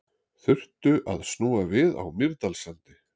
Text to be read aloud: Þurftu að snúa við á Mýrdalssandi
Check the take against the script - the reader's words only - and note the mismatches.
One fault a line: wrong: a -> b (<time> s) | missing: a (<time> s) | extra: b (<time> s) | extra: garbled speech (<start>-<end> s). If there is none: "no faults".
no faults